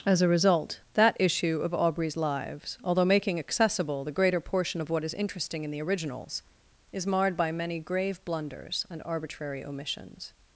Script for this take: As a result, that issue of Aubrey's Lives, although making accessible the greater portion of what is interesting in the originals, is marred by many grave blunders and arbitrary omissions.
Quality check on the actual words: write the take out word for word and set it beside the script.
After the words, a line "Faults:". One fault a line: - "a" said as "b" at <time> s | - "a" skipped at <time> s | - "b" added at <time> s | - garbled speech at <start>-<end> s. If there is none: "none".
As a result, that issue of Aubrey's Lives, although making accessible the greater portion of what is interesting in the originals, is marred by many grave blunders and arbitrary omissions.
Faults:
none